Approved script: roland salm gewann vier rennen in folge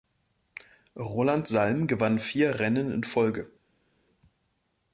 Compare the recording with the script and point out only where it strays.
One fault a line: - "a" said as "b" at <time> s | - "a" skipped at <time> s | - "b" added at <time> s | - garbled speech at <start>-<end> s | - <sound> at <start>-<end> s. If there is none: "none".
none